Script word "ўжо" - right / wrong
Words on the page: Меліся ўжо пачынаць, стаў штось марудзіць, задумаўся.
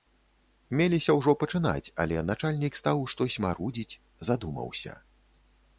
right